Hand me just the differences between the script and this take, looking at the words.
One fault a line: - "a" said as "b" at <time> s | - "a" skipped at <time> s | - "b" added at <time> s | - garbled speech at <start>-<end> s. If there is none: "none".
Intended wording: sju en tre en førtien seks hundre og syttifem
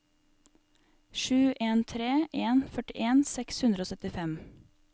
none